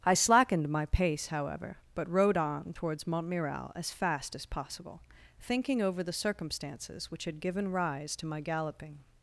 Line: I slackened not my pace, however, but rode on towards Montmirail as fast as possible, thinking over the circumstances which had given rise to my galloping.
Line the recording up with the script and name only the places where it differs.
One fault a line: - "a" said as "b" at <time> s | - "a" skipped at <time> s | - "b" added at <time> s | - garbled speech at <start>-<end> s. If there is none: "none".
- "not" skipped at 0.7 s